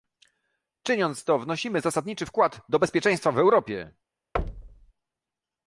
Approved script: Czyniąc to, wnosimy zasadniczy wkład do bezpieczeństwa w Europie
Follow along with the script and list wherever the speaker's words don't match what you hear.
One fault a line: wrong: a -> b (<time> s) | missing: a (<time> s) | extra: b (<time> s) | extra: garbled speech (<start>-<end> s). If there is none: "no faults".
no faults